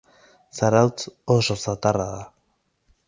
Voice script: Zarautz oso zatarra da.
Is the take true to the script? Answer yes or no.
yes